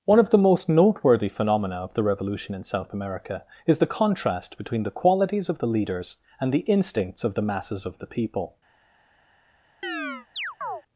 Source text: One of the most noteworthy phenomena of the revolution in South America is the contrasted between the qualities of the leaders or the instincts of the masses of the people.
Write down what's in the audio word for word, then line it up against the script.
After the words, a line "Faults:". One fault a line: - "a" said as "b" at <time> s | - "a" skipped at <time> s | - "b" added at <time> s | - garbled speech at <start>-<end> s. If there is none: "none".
One of the most noteworthy phenomena of the revolution in South America is the contrast between the qualities of the leaders and the instincts of the masses of the people.
Faults:
- "contrasted" said as "contrast" at 3.9 s
- "or" said as "and" at 6.4 s